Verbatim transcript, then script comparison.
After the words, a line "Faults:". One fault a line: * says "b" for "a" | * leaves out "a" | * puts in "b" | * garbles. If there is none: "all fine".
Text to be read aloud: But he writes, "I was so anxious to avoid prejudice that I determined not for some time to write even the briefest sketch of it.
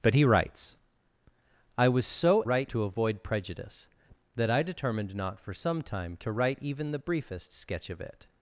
But he writes, "I was so write to avoid prejudice that I determined not for some time to write even the briefest sketch of it.
Faults:
* says "write" for "anxious"